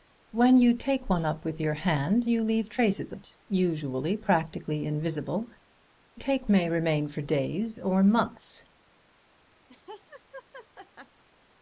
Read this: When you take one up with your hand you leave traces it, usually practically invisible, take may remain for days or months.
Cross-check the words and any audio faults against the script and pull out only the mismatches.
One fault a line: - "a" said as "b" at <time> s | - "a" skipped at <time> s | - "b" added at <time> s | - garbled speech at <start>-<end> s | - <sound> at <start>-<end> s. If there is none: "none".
- laugh at 9.7-11.2 s